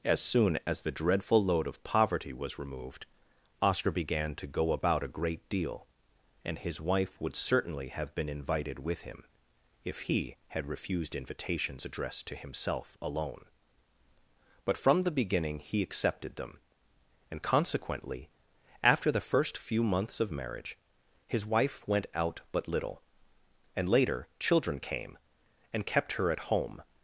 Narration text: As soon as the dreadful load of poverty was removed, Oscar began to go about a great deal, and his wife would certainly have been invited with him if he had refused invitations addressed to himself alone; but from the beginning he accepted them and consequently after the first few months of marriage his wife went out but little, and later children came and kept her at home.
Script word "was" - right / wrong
right